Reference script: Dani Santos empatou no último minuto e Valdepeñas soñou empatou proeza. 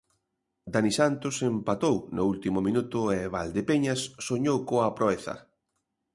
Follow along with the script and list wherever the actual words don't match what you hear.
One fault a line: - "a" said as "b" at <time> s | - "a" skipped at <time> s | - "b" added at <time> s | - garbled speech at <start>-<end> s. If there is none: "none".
- "empatou" said as "coa" at 4.7 s